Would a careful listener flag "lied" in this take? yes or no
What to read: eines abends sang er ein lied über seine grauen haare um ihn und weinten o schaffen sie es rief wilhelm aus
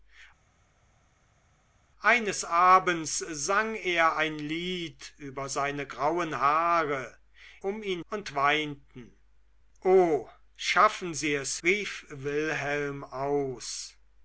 no